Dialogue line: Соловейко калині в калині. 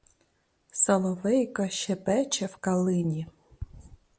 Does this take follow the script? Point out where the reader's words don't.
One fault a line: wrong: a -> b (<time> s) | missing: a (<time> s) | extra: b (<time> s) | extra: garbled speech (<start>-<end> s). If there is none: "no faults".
wrong: калині -> щебече (1.7 s)